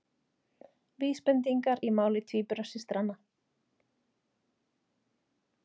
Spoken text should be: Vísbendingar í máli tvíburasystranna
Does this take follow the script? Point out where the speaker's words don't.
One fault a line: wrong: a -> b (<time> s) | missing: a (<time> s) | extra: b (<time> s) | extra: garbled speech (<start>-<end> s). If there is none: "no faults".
no faults